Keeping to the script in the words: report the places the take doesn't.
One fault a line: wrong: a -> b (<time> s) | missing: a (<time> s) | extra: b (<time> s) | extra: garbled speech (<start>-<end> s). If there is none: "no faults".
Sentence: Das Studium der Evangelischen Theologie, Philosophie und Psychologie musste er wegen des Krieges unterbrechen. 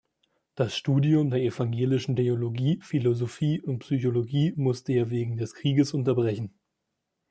no faults